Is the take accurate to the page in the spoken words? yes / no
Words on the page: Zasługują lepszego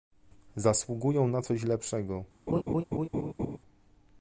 no